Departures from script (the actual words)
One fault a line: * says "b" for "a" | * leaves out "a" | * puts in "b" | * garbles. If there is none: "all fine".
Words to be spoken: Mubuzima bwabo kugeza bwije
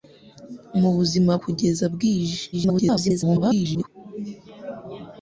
* leaves out "bwabo"
* garbles